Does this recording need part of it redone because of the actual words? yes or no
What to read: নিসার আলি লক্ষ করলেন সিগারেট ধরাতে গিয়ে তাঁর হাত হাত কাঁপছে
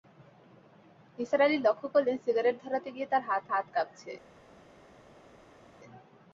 no